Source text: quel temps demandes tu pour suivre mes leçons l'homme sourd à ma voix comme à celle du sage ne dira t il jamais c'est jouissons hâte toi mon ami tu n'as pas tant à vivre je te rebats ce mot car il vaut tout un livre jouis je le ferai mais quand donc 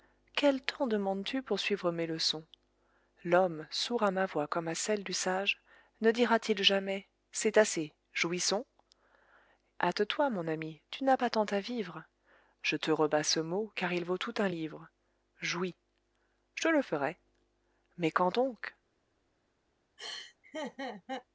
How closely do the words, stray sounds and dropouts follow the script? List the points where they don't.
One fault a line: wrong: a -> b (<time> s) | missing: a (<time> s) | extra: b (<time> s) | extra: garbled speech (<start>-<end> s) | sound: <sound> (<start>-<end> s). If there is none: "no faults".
extra: assez (7.6 s)
sound: laugh (20.0-21.3 s)